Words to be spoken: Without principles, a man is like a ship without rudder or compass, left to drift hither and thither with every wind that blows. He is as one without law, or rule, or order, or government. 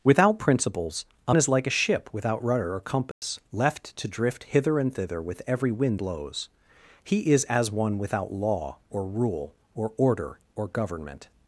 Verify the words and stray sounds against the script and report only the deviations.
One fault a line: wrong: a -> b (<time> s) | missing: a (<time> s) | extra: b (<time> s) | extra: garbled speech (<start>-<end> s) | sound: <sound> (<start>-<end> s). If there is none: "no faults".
missing: man (1.4 s)
sound: dropout (3.1-3.2 s)
missing: that (6.0 s)